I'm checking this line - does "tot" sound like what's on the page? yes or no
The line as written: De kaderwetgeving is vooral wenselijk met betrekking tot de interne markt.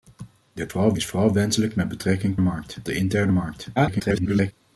no